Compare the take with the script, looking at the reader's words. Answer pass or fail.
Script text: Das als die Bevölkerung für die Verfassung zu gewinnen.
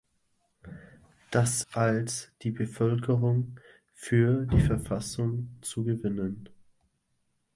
pass